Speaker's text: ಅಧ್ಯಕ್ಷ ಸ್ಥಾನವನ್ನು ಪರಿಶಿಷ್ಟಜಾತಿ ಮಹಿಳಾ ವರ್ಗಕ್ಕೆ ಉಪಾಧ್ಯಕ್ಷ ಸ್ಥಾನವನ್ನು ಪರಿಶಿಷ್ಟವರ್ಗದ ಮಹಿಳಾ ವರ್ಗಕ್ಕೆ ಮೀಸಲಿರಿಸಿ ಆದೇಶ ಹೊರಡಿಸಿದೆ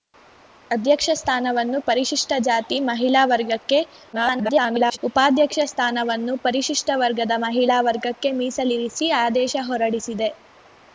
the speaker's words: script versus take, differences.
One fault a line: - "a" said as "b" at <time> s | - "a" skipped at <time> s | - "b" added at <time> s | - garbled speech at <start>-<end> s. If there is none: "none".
- garbled speech at 4.1-5.0 s